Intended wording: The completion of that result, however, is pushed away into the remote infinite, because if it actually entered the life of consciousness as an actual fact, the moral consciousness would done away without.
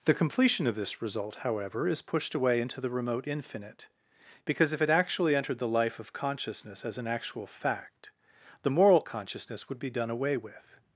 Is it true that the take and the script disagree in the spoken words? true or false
true